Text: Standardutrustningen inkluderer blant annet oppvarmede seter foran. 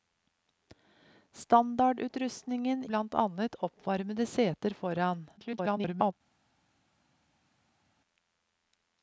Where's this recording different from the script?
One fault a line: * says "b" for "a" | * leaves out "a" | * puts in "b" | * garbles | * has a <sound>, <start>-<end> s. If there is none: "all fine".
* leaves out "inkluderer"
* garbles